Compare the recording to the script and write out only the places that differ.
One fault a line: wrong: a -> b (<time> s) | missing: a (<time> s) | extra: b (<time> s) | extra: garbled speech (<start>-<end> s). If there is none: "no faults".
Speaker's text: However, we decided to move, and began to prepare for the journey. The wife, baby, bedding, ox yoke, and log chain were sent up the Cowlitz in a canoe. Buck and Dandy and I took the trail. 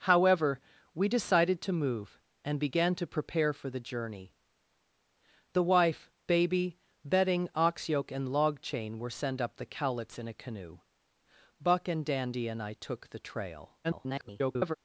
extra: garbled speech (13.8-14.8 s)